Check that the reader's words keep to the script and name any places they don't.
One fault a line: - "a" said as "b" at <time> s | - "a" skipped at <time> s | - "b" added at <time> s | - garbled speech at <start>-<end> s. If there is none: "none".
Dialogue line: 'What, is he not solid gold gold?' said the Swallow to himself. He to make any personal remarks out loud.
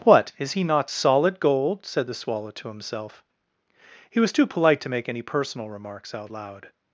- "gold" skipped at 1.8 s
- "was too polite" added at 4.2 s